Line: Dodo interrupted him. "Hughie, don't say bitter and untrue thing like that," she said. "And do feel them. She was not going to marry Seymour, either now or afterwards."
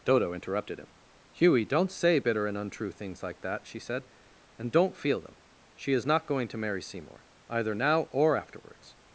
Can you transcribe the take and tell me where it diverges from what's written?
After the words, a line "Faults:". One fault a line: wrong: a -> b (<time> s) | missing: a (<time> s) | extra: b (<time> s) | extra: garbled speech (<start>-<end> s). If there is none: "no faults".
Dodo interrupted him. "Hughie, don't say bitter and untrue things like that," she said. "And don't feel them. She is not going to marry Seymour, either now or afterwards."
Faults:
wrong: thing -> things (2.9 s)
wrong: do -> don't (4.7 s)
wrong: was -> is (5.9 s)